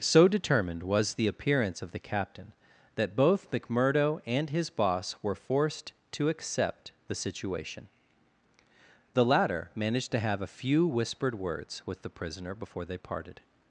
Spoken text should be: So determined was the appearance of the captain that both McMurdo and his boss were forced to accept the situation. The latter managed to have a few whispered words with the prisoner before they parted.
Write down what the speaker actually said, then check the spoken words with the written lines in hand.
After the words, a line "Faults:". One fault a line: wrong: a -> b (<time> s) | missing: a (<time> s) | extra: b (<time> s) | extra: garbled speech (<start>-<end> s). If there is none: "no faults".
So determined was the appearance of the captain that both McMurdo and his boss were forced to accept the situation. The latter managed to have a few whispered words with the prisoner before they parted.
Faults:
no faults